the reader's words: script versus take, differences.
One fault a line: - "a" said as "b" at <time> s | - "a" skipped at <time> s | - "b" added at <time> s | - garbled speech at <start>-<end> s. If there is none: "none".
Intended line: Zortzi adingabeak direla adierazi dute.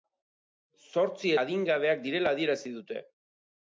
none